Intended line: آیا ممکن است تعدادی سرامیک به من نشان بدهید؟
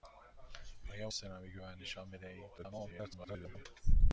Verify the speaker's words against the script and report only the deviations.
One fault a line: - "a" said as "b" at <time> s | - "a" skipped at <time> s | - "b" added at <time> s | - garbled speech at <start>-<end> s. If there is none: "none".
- "ممکن است تعدادی" skipped at 1.1 s
- garbled speech at 2.6-3.7 s